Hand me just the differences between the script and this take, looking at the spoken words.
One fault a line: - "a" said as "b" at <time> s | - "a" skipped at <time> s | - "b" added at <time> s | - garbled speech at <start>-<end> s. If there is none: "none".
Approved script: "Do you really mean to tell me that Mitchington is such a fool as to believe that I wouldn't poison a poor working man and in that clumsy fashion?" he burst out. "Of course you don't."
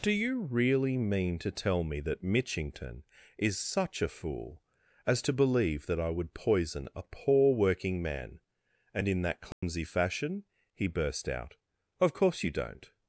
- "wouldn't" said as "would" at 6.1 s